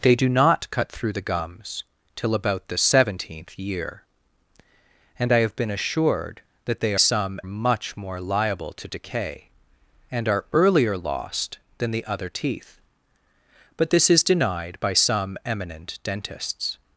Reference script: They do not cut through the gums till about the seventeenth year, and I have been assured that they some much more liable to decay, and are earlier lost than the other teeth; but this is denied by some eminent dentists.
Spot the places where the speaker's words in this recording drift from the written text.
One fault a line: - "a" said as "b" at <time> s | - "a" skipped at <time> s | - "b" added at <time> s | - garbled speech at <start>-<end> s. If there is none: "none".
none